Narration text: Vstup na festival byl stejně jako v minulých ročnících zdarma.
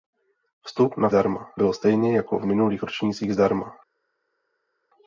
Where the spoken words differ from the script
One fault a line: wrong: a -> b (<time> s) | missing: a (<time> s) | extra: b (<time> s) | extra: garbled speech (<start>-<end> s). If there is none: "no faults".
wrong: festival -> zdarma (1.1 s)